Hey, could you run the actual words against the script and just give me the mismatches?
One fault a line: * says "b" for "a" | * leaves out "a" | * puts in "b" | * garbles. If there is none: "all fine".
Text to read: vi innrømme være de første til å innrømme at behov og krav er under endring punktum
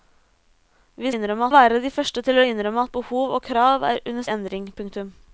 all fine